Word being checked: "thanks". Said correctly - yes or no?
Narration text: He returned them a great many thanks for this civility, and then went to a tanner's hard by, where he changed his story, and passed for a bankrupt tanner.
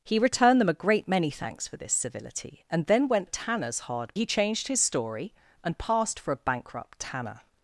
yes